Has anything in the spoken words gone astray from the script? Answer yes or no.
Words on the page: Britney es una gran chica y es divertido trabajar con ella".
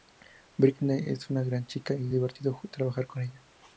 yes